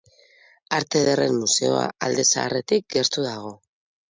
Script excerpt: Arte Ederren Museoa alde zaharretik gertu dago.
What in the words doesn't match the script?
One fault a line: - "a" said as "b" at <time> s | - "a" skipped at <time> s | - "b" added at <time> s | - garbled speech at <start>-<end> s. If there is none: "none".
none